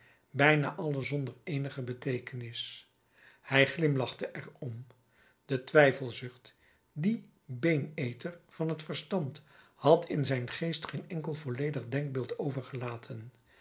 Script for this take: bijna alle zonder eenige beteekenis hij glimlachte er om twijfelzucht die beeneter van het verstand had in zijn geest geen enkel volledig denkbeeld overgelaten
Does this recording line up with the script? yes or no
no